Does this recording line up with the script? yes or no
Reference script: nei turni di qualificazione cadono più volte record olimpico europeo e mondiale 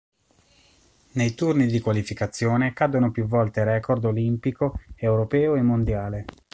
yes